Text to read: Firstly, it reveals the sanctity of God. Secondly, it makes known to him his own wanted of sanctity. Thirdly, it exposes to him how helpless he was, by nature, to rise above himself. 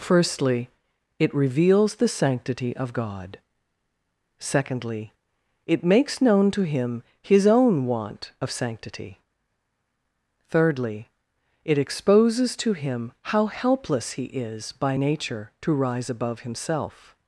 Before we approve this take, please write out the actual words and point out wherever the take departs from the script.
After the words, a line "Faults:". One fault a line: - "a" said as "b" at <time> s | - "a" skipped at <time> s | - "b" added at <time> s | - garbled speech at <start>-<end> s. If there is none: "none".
Firstly, it reveals the sanctity of God. Secondly, it makes known to him his own want of sanctity. Thirdly, it exposes to him how helpless he is, by nature, to rise above himself.
Faults:
- "wanted" said as "want" at 7.8 s
- "was" said as "is" at 14.2 s